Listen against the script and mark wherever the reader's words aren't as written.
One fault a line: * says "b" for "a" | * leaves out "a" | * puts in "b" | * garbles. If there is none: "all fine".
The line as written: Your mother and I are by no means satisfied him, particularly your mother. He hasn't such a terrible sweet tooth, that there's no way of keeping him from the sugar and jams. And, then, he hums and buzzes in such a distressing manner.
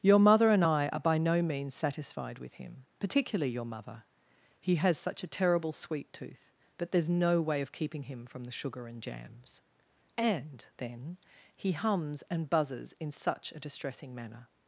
* puts in "with"
* says "has" for "hasn't"